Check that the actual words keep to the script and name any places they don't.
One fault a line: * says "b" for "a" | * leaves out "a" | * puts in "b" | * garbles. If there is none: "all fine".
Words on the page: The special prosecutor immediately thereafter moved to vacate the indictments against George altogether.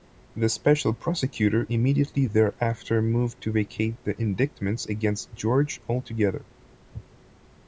all fine